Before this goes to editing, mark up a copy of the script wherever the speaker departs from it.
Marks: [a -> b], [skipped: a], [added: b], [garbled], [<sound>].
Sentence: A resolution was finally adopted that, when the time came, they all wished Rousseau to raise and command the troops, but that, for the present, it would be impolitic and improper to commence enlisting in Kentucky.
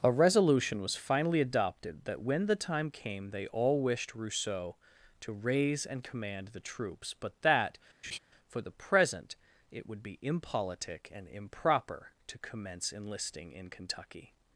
A resolution was finally adopted that, when the time came, they all wished Rousseau to raise and command the troops, but that, [laugh] for the present, it would be impolitic and improper to commence enlisting in Kentucky.